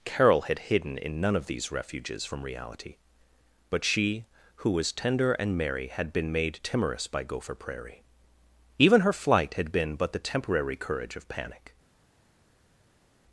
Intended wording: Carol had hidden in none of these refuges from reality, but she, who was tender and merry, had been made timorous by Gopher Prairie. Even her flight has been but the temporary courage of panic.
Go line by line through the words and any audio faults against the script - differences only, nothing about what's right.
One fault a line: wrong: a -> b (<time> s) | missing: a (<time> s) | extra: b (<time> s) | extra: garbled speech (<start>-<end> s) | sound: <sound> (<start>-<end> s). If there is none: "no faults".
wrong: has -> had (9.6 s)